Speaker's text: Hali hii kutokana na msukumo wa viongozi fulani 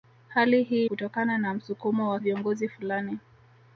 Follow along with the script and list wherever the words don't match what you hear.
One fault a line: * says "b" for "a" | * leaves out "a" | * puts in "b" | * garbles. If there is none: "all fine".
all fine